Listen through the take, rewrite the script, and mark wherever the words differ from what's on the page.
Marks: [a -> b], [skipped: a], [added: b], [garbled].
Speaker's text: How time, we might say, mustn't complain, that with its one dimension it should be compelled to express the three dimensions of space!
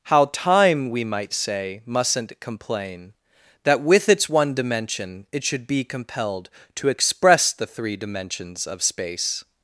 How time, we might say, mustn't complain, that with its one dimension it should be compelled to express the three dimensions of space!